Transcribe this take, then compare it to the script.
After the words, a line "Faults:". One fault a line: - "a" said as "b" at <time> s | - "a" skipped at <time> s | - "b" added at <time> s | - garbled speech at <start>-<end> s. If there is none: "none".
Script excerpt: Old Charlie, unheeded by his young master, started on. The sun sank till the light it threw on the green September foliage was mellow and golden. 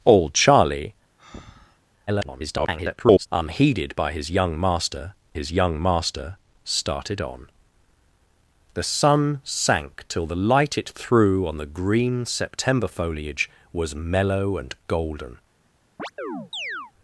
Old Charlie, [garbled] unheeded by his young master his young master, started on. The sun sank till the light it threw on the green September foliage was mellow and golden.
Faults:
- garbled speech at 2.1-3.3 s
- "his young master" added at 5.3 s